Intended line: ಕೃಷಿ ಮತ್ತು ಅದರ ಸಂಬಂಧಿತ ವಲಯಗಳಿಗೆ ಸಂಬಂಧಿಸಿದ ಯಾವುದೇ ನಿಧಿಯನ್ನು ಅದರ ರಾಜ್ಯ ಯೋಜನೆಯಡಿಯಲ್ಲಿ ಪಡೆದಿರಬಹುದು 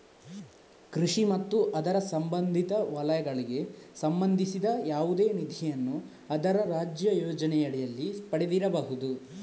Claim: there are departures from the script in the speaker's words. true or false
false